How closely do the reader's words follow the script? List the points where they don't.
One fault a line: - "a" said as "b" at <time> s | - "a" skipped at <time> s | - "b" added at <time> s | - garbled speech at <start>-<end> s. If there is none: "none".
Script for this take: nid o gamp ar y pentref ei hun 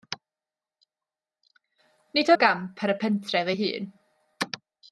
none